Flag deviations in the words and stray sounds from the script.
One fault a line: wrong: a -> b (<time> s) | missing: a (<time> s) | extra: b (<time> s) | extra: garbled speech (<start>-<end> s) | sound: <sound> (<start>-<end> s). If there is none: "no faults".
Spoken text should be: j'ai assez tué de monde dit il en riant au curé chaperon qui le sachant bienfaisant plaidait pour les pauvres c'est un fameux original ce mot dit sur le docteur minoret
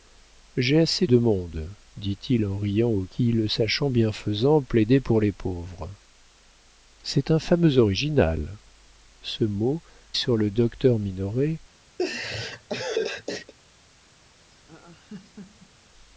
missing: tué (1.1 s)
missing: curé chaperon (3.0 s)
missing: dit (9.8 s)
sound: laugh (12.0-13.5 s)
sound: laugh (14.5-15.9 s)